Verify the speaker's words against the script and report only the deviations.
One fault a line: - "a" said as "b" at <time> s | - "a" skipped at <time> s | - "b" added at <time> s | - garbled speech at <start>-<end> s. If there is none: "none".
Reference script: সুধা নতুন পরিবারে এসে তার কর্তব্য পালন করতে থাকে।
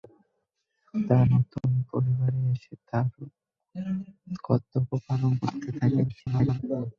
- garbled speech at 6.1-6.6 s